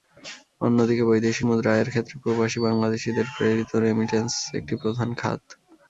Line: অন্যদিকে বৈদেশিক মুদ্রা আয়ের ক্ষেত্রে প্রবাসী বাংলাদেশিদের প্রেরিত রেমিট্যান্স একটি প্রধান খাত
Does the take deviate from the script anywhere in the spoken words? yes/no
no